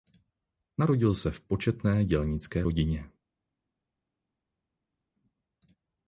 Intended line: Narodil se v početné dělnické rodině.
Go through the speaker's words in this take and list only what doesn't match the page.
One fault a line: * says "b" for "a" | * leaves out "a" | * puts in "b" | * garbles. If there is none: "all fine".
all fine